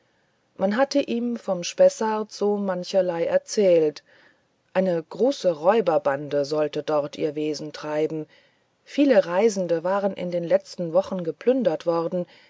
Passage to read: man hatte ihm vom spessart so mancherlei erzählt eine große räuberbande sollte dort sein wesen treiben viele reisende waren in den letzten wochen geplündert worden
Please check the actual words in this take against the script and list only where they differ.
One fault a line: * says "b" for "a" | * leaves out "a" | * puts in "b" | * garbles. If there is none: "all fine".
* says "ihr" for "sein"